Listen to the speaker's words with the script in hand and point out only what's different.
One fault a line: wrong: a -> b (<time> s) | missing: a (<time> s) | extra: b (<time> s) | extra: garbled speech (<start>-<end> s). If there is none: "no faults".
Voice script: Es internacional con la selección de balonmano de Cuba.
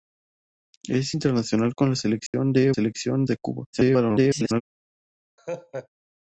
wrong: balonmano -> selección (2.7 s)
extra: garbled speech (3.7-4.6 s)